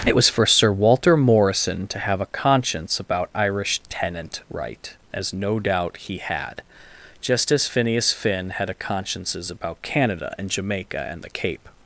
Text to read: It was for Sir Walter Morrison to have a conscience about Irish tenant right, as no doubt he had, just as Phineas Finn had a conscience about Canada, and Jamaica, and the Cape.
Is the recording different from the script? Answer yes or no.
yes